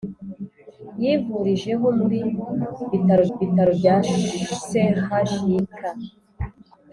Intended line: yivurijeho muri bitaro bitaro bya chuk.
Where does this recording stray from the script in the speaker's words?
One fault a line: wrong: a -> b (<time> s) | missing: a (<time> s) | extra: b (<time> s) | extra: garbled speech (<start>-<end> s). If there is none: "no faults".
no faults